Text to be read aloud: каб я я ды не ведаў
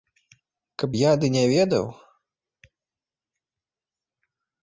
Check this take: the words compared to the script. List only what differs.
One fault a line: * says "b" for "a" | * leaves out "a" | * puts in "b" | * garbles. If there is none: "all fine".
* leaves out "я"